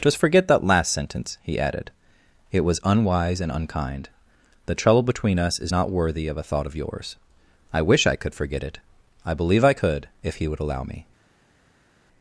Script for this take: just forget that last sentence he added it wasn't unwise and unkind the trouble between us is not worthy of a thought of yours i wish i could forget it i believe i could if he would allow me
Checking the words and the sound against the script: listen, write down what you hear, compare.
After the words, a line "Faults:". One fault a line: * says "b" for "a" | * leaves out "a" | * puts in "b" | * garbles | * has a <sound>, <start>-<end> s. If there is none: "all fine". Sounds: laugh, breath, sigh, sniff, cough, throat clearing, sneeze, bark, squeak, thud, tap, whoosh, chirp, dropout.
just forget that last sentence he added it was unwise and unkind the trouble between us is not worthy of a thought of yours i wish i could forget it i believe i could if he would allow me
Faults:
* says "was" for "wasn't"